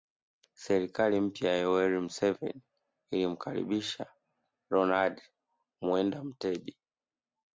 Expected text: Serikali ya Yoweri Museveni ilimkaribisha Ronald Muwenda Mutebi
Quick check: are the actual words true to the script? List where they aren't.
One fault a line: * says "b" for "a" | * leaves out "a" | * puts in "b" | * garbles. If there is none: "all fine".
* puts in "mpya"